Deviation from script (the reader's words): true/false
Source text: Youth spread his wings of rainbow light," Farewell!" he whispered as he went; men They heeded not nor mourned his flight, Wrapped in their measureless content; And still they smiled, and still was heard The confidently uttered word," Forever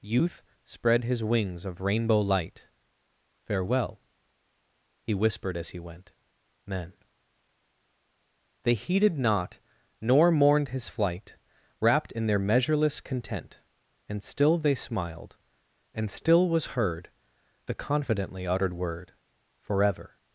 false